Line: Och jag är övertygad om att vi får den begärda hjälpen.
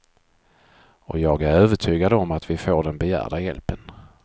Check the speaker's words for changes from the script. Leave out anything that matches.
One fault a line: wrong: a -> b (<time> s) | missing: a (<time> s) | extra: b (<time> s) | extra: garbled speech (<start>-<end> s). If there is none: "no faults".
no faults